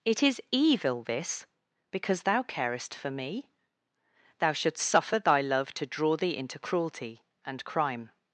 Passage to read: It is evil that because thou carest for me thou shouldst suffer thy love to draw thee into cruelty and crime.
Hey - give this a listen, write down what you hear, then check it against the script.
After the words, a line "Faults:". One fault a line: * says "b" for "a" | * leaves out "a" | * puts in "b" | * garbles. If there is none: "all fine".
It is evil this because thou carest for me thou shouldst suffer thy love to draw thee into cruelty and crime.
Faults:
* says "this" for "that"